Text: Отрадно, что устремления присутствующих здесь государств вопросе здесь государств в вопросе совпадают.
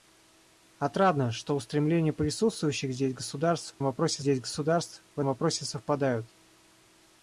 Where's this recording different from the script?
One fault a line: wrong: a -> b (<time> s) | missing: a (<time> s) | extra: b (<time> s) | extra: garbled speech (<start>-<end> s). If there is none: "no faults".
no faults